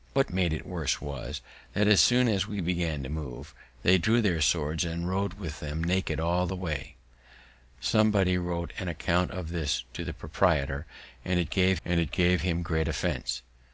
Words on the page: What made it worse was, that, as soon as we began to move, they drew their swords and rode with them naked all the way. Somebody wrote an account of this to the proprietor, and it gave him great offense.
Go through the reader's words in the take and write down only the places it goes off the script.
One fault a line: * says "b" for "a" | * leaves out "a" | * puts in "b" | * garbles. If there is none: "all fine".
* puts in "and it gave"